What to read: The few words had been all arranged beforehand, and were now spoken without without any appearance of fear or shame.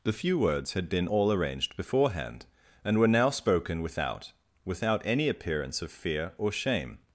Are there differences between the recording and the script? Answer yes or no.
no